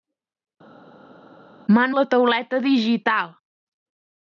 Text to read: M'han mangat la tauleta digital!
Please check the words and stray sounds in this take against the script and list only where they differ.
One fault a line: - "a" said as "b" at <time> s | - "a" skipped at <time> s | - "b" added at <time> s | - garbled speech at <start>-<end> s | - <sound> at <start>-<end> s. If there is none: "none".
- "mangat" skipped at 1.9 s